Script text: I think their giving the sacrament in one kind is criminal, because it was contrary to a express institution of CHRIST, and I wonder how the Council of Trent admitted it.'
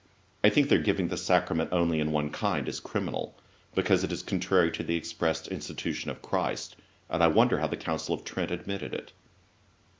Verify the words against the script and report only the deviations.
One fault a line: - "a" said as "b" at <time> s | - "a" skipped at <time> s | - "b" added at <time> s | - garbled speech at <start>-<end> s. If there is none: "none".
- "only" added at 1.7 s
- "was" said as "is" at 4.1 s
- "a" said as "the" at 4.8 s